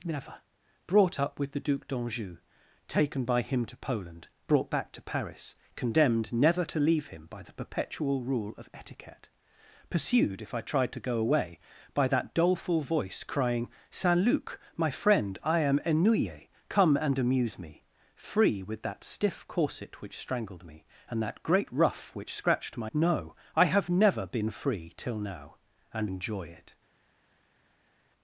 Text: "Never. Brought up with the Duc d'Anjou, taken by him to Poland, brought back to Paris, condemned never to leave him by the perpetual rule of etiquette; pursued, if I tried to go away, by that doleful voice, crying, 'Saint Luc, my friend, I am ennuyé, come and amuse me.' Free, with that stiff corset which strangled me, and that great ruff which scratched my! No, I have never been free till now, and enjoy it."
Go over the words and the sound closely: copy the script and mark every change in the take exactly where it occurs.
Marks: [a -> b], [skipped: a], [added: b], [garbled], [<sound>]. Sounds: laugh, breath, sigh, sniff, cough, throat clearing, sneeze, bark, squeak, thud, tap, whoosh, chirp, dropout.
"Never. Brought up with the Duc d'Anjou, taken by him to Poland, brought back to Paris, condemned never to leave him by the perpetual rule of etiquette; pursued, if I tried to go away, by that doleful voice, crying, 'Saint Luc, my friend, I am ennuyé, come and amuse me.' Free, with that stiff corset which strangled me, and that great ruff which scratched my! No, I have never been free till now, and enjoy it."